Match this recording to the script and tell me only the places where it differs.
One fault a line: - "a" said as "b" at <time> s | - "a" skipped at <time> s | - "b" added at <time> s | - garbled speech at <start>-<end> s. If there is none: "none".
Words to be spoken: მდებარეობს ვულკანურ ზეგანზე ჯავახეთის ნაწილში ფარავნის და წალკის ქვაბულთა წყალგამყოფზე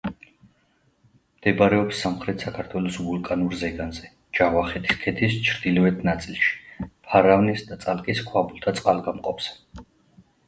- "სამხრეთ საქართველოს" added at 2.0 s
- "ქედის ჩრდილოეთ" added at 5.1 s